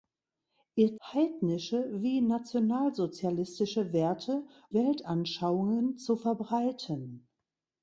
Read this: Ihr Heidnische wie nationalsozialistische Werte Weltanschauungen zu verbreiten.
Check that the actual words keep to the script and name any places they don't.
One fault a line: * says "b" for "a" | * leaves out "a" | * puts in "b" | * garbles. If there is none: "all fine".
all fine